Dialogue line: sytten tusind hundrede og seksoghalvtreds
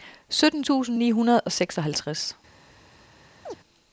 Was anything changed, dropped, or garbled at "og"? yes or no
no